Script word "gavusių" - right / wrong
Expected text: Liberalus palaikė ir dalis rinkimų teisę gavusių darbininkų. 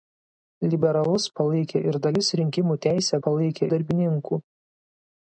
wrong